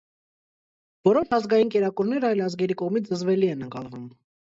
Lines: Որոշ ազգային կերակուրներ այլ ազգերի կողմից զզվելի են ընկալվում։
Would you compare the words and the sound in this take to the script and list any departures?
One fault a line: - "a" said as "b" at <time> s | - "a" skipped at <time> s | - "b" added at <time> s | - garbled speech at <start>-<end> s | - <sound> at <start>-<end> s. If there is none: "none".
none